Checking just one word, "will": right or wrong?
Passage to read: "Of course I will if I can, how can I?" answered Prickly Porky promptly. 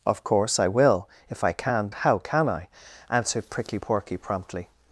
right